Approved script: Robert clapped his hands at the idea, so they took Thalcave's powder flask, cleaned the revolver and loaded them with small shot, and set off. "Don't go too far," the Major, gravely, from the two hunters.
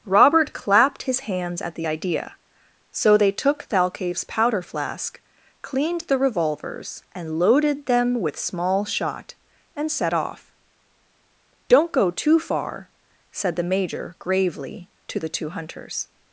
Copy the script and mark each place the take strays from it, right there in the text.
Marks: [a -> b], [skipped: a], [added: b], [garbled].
Robert clapped his hands at the idea, so they took Thalcave's powder flask, cleaned the [revolver -> revolvers] and loaded them with small shot, and set off. "Don't go too far," [added: said] the Major, gravely, [from -> to] the two hunters.